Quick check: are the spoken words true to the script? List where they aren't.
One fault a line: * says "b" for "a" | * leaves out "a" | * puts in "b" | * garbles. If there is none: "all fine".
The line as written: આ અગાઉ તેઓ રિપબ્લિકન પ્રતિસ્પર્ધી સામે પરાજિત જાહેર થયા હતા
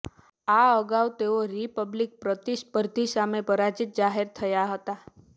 all fine